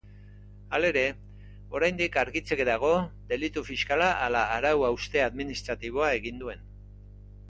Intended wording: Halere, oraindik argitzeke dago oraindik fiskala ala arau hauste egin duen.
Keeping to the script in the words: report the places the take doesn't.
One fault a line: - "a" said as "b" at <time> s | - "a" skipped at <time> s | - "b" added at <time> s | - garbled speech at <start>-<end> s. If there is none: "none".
- "oraindik" said as "delitu" at 3.3 s
- "administratiboa" added at 5.3 s